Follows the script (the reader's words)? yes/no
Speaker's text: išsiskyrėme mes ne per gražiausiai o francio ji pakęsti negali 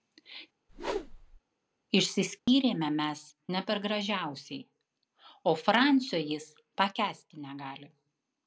no